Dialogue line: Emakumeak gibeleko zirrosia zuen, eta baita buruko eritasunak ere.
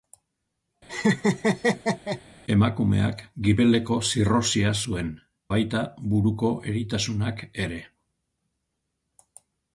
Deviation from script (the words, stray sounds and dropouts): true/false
true